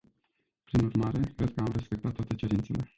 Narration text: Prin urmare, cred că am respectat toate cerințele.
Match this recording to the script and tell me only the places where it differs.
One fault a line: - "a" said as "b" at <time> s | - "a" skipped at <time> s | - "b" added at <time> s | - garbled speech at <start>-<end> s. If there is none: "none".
none